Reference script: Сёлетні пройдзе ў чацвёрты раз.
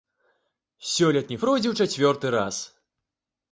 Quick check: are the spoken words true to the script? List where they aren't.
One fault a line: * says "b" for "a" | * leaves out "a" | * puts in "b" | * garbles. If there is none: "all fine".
all fine